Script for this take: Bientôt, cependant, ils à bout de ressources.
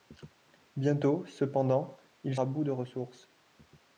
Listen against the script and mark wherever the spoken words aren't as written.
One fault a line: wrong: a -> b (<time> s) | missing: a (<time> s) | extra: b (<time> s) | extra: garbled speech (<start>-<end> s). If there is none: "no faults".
no faults